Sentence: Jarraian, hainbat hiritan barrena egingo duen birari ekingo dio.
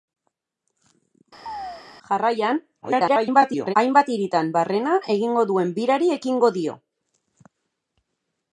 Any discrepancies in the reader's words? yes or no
yes